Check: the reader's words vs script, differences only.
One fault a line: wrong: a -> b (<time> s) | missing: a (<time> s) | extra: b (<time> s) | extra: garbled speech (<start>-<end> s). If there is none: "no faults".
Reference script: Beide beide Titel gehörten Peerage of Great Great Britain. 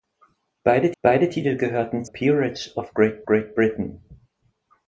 no faults